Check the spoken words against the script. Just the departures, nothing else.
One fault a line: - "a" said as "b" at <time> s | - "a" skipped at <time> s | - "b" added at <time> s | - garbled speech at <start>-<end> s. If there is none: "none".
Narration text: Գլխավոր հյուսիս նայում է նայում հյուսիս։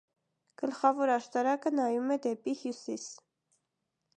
- "հյուսիս" said as "աշտարակը" at 1.1 s
- "նայում" said as "դեպի" at 2.2 s